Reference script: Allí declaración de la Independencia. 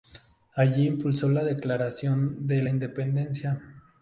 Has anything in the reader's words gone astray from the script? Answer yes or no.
yes